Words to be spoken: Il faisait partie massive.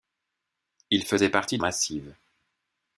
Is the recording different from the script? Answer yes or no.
no